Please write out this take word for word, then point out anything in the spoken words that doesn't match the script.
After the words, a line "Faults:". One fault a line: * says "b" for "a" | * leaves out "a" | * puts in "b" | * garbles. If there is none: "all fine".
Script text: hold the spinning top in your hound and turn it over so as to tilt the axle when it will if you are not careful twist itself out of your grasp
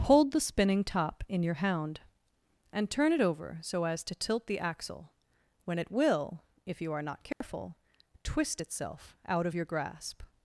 hold the spinning top in your hound and turn it over so as to tilt the axle when it will if you are not careful twist itself out of your grasp
Faults:
all fine